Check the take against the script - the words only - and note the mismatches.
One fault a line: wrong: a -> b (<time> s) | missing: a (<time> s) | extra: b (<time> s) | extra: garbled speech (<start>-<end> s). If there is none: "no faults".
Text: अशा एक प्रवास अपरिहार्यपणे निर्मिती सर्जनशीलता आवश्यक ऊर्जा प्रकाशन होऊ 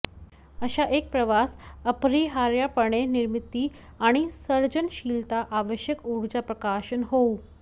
extra: आणि (4.0 s)